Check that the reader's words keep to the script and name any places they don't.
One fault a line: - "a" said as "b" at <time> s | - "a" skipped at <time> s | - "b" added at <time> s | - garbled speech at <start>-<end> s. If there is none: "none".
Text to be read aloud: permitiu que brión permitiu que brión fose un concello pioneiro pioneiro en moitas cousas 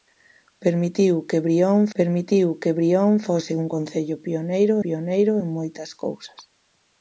none